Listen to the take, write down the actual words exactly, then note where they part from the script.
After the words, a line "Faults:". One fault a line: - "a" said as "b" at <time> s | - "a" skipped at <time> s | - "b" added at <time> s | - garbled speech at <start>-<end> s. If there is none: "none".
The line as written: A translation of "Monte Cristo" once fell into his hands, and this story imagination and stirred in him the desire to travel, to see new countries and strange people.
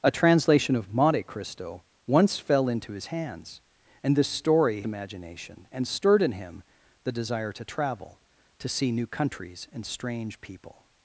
A translation of "Monte Cristo" once fell into his hands, and this story imagination and stirred in him the desire to travel, to see new countries and strange people.
Faults:
none